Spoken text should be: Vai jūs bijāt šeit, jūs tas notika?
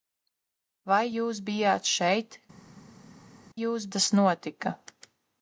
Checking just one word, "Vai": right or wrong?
right